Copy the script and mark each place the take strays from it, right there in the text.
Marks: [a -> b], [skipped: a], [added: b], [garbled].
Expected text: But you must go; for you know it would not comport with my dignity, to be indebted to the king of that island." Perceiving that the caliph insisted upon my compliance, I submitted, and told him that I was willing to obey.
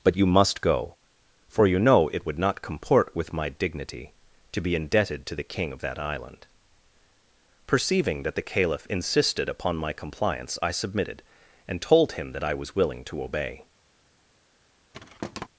But you must go; for you know it would not comport with my dignity, to be indebted to the king of that island." Perceiving that the caliph insisted upon my compliance, I submitted, and told him that I was willing to obey.